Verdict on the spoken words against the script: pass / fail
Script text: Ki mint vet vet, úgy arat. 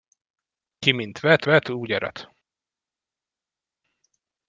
pass